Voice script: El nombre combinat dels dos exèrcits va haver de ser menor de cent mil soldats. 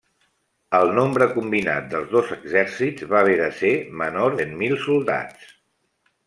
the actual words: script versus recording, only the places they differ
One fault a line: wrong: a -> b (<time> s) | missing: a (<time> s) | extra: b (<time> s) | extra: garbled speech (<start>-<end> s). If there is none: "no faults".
missing: de (4.4 s)